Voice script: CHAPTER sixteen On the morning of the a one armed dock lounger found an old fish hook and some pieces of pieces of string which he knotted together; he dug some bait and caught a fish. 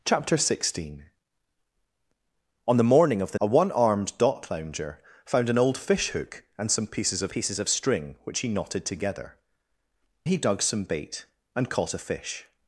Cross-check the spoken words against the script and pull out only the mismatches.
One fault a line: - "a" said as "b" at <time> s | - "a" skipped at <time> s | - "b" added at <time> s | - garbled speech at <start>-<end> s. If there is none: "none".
none